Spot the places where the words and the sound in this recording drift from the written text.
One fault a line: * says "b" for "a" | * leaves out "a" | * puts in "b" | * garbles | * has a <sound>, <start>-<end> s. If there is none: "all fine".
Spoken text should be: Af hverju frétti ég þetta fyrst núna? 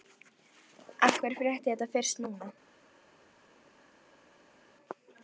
all fine